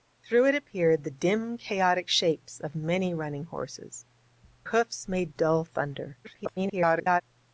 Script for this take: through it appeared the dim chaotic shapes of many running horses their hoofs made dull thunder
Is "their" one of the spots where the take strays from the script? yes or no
yes